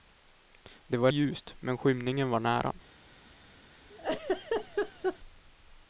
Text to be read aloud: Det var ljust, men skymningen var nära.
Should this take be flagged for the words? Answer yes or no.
no